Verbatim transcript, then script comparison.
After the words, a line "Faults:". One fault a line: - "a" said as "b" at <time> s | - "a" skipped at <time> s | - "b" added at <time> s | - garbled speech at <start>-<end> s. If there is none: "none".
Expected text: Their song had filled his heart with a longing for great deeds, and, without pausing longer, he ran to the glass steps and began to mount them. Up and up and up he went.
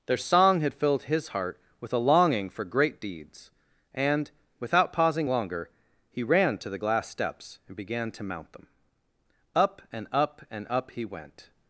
Their song had filled his heart with a longing for great deeds, and, without pausing longer, he ran to the glass steps and began to mount them. Up and up and up he went.
Faults:
none